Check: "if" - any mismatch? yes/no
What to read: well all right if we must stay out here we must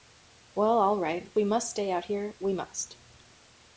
yes